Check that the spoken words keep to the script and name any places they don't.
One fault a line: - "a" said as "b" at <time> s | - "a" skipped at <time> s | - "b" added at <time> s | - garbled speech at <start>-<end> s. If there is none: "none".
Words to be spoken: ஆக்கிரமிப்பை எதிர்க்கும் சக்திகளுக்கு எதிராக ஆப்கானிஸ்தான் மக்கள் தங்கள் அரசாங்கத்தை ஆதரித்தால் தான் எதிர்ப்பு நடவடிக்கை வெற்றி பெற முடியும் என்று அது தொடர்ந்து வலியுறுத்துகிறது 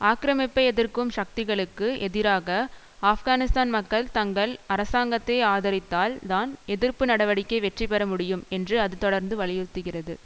none